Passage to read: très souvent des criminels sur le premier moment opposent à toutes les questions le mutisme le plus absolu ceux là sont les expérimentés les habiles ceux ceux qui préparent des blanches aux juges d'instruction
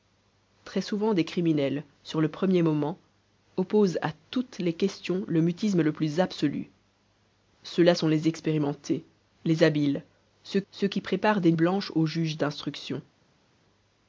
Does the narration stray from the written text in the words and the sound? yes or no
no